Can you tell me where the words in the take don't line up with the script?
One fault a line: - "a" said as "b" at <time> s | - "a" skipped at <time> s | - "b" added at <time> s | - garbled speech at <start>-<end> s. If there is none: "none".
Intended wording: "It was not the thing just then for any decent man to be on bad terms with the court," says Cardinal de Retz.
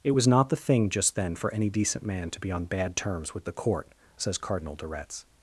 none